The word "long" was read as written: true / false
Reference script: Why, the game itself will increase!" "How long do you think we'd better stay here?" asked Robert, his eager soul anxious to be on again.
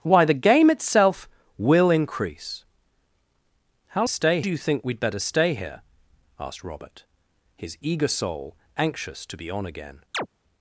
false